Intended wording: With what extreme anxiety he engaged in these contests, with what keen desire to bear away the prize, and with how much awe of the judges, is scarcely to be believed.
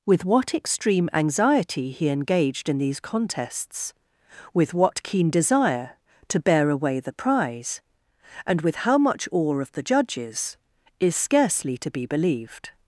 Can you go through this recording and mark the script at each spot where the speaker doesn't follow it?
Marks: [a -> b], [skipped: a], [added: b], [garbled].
With what extreme anxiety he engaged in these contests, with what keen desire to bear away the prize, and with how much awe of the judges, is scarcely to be believed.